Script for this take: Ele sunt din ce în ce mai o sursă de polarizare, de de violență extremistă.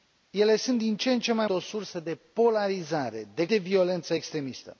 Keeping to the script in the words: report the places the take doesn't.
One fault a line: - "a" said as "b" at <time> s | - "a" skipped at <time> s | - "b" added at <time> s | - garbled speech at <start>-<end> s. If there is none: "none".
none